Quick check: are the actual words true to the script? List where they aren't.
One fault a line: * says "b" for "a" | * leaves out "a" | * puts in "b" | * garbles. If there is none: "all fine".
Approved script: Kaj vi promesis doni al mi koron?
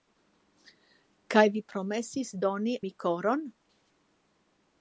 * leaves out "al"